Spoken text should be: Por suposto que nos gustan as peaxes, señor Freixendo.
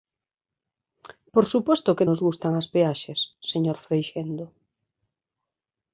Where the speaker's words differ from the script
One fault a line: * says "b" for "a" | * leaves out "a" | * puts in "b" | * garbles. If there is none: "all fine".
all fine